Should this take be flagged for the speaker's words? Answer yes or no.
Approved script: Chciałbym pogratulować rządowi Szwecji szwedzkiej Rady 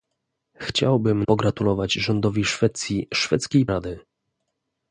no